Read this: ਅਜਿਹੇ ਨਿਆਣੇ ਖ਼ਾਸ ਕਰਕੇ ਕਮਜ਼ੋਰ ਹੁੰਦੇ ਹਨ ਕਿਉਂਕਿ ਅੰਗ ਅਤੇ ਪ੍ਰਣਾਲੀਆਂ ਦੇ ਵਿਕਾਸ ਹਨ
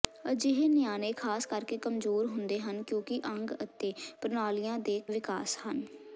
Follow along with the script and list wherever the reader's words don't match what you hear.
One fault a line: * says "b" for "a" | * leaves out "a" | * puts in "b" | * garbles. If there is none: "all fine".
all fine